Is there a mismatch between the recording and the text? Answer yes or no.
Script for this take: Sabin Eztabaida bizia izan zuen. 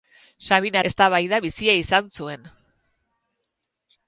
no